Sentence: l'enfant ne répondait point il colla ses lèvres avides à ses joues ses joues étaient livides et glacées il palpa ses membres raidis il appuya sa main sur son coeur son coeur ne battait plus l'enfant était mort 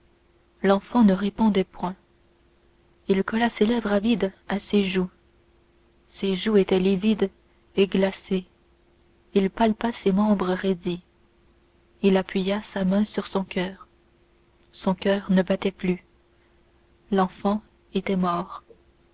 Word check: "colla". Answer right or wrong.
right